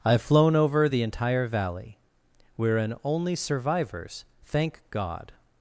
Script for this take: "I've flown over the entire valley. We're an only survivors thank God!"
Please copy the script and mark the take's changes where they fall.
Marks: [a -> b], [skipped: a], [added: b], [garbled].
"I've flown over the entire valley. We're an only survivors thank God!"